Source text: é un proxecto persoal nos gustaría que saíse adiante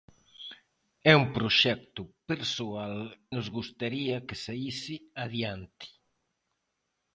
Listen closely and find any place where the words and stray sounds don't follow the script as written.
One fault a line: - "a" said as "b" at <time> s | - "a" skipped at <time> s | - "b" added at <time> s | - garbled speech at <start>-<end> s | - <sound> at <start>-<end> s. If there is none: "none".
none